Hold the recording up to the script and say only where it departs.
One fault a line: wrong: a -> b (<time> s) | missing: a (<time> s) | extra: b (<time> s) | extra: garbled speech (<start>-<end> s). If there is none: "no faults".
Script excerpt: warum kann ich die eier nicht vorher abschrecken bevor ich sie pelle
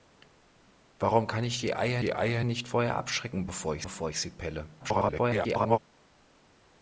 extra: die eier (2.0 s)
extra: bevor ich (3.8 s)
extra: garbled speech (4.8-5.8 s)